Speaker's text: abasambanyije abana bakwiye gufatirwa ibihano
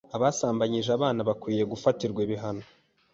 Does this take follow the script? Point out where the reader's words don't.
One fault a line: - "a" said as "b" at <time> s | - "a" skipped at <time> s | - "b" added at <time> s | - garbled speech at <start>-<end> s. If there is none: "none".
none